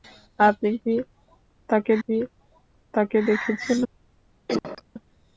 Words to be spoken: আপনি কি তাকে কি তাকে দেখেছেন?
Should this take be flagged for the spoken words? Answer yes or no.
no